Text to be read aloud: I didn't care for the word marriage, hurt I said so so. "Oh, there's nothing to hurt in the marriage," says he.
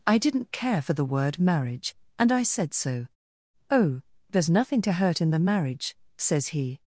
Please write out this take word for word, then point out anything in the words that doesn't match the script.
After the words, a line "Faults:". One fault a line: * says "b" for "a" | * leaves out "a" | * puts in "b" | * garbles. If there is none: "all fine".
I didn't care for the word marriage, and I said so. "Oh, there's nothing to hurt in the marriage," says he.
Faults:
* says "and" for "hurt"
* leaves out "so"